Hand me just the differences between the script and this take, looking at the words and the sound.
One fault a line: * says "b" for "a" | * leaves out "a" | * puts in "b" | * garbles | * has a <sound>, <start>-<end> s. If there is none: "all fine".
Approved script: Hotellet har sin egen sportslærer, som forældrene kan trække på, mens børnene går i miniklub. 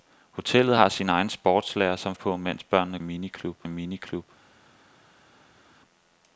* leaves out "forældrene kan trække"
* says "miniklub" for "går"